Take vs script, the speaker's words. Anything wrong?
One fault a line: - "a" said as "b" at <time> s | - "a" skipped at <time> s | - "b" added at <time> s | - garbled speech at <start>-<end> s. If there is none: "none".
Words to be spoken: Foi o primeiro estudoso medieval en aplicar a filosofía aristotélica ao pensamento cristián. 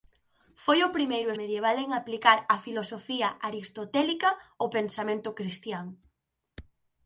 - "estudoso" skipped at 1.3 s